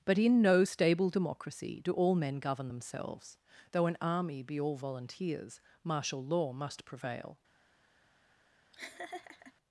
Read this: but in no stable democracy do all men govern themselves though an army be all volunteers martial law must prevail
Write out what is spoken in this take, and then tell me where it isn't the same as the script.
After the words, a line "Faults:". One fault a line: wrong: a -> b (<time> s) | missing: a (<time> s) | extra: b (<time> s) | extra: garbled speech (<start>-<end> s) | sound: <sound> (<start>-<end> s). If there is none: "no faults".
but in no stable democracy do all men govern themselves though an army be all volunteers martial law must prevail
Faults:
sound: laugh (8.7-9.5 s)